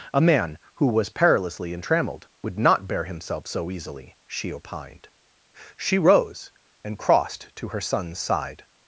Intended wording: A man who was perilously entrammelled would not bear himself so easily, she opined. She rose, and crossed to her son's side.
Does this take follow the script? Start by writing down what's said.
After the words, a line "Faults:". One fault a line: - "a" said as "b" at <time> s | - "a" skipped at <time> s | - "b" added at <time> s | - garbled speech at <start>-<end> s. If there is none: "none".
A man who was perilously entrammelled would not bear himself so easily, she opined. She rose, and crossed to her son's side.
Faults:
none